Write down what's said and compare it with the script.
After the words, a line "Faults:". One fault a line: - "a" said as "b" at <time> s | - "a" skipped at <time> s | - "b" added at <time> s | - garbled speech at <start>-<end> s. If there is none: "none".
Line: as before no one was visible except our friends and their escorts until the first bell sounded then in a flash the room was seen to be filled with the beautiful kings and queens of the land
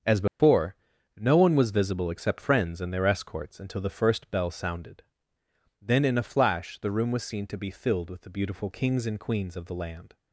as before no one was visible except friends and their escorts until the first bell sounded then in a flash the room was seen to be filled with the beautiful kings and queens of the land
Faults:
- "our" skipped at 2.4 s